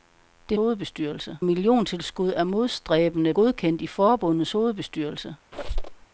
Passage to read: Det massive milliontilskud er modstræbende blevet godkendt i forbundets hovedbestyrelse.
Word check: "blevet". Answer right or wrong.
wrong